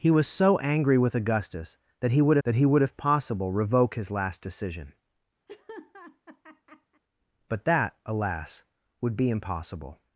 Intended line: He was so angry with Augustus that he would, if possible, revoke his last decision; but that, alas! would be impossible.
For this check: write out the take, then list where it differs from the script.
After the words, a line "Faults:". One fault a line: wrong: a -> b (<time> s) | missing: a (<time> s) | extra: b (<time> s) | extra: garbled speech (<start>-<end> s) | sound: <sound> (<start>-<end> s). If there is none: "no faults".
He was so angry with Augustus that he would that he would, if possible, revoke his last decision; but that, alas! would be impossible.
Faults:
extra: that he would (2.4 s)
sound: laugh (5.5-7.0 s)